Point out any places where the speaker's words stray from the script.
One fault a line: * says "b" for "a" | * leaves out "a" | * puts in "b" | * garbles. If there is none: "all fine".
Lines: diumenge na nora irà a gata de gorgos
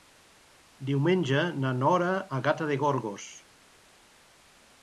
* leaves out "irà"